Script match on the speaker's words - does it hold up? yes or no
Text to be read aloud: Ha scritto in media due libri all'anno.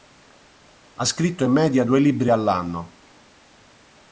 yes